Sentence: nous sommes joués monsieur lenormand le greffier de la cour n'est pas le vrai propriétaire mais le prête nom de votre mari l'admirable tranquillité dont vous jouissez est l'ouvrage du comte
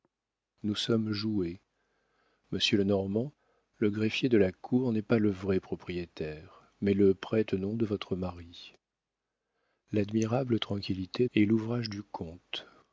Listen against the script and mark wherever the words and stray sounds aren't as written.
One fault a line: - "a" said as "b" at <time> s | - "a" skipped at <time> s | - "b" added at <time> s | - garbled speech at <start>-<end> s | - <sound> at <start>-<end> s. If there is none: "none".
- "dont vous jouissez" skipped at 11.3 s